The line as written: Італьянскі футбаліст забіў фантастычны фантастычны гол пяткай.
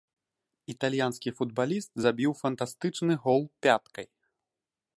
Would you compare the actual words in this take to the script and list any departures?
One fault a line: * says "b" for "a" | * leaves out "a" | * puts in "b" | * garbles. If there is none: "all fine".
* leaves out "фантастычны"